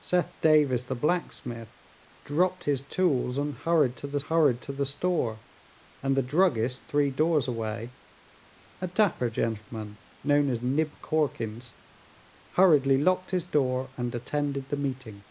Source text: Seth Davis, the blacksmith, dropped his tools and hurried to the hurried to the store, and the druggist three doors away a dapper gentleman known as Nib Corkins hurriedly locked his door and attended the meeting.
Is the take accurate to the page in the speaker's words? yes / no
yes